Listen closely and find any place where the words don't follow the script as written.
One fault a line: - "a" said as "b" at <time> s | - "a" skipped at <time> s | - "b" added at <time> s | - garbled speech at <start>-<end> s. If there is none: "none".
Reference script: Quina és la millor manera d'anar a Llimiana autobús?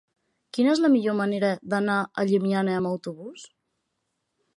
- "amb" added at 2.8 s